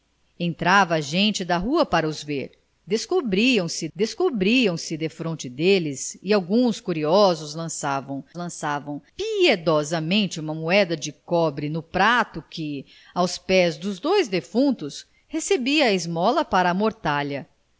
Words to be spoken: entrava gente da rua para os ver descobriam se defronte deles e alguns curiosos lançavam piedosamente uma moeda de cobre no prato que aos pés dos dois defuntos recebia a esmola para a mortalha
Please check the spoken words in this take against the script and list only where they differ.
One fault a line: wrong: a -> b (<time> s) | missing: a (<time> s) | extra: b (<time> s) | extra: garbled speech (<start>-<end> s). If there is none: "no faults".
extra: descobriam se (4.0 s)
extra: lançavam (8.4 s)